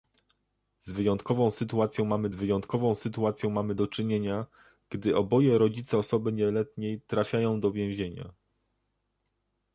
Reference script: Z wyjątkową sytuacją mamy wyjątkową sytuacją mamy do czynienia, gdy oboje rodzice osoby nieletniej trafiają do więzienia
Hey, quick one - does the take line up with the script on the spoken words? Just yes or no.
yes